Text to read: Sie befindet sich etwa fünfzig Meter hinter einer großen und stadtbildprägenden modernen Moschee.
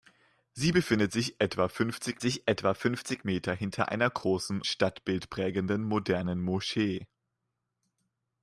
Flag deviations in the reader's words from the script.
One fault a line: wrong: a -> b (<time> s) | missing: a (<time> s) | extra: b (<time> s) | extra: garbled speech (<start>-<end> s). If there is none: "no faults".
extra: sich etwa fünfzig (2.2 s)
missing: und (4.6 s)